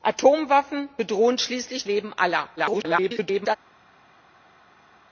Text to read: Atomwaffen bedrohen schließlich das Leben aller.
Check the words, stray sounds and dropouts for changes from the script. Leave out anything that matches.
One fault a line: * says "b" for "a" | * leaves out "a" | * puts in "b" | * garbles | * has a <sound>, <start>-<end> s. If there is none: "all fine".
* leaves out "das"
* garbles